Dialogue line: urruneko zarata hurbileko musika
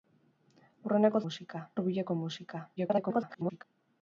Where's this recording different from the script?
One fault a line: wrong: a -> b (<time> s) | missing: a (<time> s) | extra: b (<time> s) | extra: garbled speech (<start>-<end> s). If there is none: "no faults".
wrong: zarata -> musika (1.3 s)
extra: garbled speech (2.8-3.6 s)